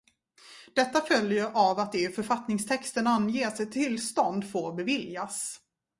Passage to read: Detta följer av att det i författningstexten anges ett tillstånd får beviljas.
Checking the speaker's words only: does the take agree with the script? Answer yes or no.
yes